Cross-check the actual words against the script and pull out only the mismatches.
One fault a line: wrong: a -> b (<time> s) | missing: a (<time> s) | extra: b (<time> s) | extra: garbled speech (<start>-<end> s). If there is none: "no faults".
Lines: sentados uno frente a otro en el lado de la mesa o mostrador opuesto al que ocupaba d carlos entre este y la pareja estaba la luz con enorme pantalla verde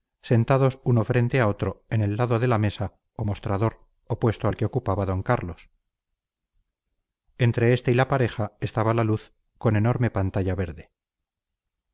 no faults